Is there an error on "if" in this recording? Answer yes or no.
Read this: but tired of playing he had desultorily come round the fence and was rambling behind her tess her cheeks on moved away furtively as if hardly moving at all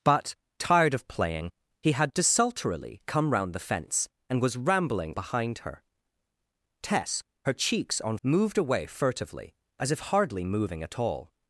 no